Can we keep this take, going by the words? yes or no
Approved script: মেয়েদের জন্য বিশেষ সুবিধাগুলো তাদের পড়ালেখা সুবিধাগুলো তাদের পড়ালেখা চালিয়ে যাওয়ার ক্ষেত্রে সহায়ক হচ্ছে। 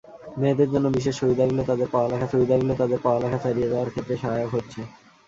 yes